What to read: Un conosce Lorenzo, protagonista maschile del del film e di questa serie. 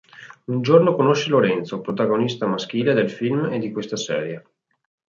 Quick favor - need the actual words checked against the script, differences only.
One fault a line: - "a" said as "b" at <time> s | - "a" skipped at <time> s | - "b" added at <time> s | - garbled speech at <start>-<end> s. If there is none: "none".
- "giorno" added at 0.6 s
- "del" skipped at 3.1 s